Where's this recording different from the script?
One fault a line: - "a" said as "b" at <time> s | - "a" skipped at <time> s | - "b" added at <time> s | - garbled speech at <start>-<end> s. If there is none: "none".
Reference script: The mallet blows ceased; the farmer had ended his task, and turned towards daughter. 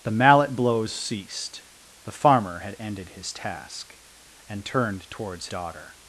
none